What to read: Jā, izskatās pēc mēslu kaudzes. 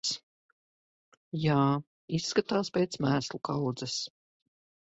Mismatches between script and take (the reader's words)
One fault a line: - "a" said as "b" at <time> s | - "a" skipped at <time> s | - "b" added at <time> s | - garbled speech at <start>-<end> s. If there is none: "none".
none